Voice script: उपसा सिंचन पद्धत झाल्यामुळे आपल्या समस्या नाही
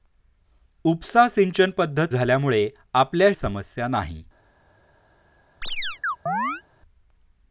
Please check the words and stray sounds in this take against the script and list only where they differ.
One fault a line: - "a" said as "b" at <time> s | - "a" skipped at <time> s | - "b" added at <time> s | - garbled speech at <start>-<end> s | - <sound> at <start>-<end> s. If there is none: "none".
- chirp at 5.6-6.6 s